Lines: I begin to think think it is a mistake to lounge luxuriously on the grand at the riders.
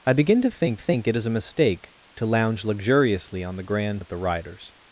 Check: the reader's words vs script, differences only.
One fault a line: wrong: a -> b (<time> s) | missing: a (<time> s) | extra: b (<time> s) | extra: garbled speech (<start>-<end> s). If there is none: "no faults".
no faults